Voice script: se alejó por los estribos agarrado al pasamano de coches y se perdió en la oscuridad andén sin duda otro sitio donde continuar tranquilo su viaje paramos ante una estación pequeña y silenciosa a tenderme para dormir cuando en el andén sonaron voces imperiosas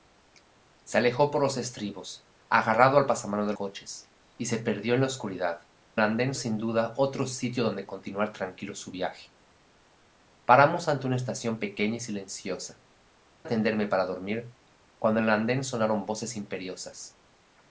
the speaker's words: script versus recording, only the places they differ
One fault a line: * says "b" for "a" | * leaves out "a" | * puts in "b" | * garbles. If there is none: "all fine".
all fine